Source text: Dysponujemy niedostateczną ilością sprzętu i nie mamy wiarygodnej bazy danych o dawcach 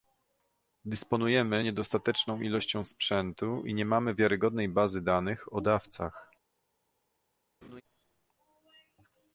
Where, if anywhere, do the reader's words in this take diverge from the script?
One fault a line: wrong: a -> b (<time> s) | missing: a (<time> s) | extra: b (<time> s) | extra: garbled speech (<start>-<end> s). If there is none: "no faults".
no faults